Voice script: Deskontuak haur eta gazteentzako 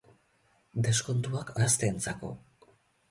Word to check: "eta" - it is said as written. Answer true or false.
false